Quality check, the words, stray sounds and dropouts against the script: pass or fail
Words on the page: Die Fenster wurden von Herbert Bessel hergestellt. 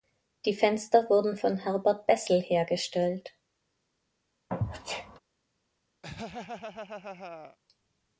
fail